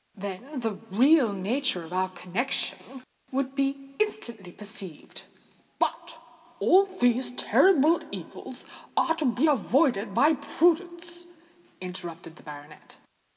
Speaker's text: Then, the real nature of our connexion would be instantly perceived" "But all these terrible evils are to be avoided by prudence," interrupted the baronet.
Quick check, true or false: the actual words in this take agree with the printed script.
true